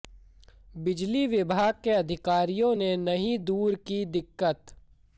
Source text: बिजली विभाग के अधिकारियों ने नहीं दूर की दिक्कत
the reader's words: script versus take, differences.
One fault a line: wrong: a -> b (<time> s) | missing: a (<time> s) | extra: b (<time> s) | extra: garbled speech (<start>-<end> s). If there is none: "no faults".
no faults